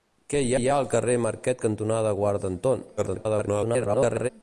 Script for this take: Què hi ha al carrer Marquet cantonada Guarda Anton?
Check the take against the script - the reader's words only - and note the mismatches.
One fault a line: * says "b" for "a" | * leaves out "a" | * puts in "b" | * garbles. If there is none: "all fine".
* puts in "hi"
* garbles